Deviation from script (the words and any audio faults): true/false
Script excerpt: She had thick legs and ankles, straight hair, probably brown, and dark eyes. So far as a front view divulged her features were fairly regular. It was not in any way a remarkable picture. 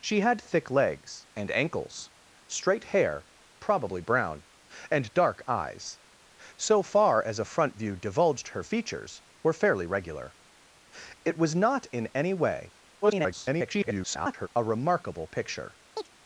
true